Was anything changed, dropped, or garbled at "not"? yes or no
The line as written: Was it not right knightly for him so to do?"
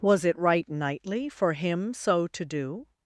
yes